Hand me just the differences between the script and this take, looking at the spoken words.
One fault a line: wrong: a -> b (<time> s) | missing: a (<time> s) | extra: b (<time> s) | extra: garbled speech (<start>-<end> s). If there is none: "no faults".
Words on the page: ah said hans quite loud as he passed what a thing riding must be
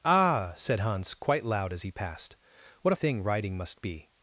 no faults